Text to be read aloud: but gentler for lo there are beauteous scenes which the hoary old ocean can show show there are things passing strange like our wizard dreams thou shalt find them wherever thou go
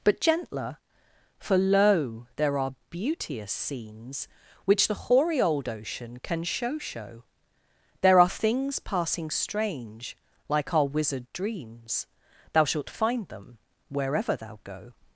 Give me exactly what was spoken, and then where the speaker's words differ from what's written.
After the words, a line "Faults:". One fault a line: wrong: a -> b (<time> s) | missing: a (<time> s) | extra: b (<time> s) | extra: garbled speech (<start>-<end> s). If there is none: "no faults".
but gentler for lo there are beauteous scenes which the hoary old ocean can show show there are things passing strange like our wizard dreams thou shalt find them wherever thou go
Faults:
no faults